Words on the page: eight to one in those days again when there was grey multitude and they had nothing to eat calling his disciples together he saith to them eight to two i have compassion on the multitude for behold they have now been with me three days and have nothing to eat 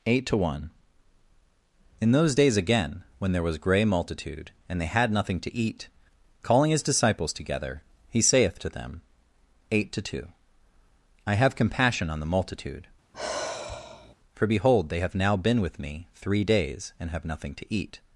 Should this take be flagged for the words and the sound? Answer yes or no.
yes